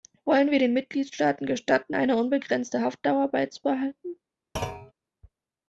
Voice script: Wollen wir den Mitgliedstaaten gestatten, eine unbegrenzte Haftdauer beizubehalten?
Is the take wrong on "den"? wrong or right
right